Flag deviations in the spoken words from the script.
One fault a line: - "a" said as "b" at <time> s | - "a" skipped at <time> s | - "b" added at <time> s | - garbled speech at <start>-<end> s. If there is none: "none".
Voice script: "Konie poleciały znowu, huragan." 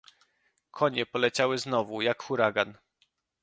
- "jak" added at 2.0 s